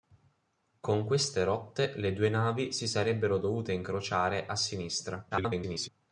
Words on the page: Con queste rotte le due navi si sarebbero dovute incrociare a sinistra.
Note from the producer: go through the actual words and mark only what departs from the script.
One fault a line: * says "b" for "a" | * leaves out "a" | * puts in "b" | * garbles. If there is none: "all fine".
* garbles